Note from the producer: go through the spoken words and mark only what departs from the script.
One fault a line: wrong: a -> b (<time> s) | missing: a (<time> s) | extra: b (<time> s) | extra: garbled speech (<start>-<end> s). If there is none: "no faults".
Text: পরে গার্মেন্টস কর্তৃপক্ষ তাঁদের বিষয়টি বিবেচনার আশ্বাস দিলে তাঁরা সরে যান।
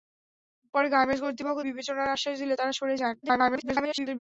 missing: তাঁদের বিষয়টি (1.6 s)
extra: garbled speech (3.2-4.2 s)